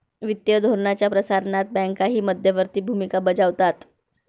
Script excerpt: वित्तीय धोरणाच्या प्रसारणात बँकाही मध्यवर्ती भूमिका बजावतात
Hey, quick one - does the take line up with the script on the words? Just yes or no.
yes